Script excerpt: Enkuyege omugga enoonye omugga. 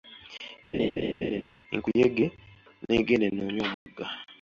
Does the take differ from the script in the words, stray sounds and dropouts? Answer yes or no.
yes